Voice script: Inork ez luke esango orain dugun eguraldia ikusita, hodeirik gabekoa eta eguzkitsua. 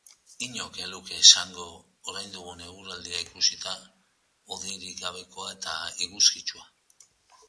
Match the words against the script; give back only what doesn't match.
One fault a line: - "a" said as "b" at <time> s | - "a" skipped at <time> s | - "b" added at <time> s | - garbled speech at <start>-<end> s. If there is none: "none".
none